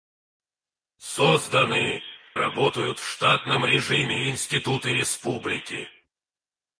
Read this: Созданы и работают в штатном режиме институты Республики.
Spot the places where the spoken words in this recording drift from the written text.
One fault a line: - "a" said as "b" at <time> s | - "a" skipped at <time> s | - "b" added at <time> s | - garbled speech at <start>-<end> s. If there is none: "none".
- "и" skipped at 2.0 s